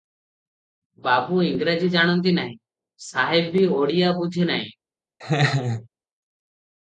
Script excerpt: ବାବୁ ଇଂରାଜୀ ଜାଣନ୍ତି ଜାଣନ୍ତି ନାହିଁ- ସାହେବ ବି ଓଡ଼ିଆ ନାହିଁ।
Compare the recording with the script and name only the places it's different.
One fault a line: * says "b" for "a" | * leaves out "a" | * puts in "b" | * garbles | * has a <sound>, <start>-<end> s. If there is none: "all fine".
* leaves out "ଜାଣନ୍ତି"
* puts in "ବୁଝେ"
* has a laugh, 5.2-5.9 s